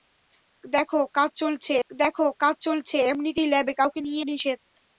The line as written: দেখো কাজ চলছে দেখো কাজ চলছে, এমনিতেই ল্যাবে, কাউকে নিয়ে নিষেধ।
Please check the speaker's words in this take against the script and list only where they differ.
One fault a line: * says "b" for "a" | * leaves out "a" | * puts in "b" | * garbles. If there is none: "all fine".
all fine